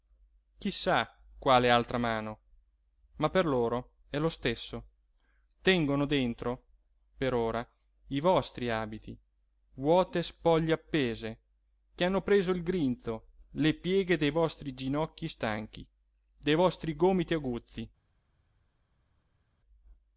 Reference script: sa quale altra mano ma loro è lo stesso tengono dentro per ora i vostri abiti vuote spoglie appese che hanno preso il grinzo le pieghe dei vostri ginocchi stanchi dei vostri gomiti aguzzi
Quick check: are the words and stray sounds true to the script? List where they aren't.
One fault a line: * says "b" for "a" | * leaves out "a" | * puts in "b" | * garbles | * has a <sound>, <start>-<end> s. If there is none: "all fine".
* puts in "per"